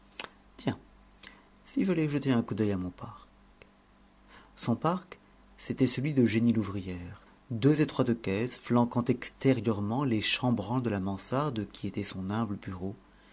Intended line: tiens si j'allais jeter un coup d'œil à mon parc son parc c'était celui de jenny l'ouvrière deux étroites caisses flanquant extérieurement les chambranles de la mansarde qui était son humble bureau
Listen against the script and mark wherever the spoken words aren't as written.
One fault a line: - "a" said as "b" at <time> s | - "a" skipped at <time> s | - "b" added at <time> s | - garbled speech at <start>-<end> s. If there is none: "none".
none